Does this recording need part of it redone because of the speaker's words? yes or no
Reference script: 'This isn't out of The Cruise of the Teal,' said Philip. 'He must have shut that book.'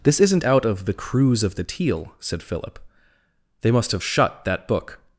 yes